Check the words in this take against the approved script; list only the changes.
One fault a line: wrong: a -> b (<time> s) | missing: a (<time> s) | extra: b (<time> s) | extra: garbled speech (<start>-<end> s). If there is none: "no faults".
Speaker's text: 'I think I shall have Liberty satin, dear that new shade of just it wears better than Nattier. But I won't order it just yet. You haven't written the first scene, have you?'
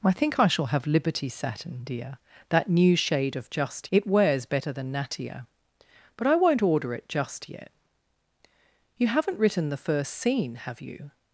no faults